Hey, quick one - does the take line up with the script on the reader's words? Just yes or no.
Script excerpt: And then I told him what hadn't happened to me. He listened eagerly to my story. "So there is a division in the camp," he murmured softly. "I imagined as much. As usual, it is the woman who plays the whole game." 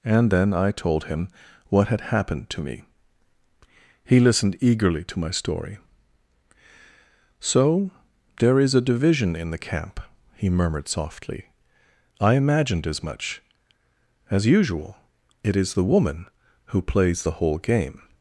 no